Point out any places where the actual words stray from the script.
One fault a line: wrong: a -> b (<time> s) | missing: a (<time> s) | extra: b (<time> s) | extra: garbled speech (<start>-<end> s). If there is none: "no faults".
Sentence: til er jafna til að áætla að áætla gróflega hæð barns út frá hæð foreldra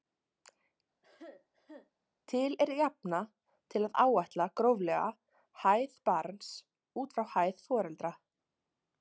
missing: að áætla (4.5 s)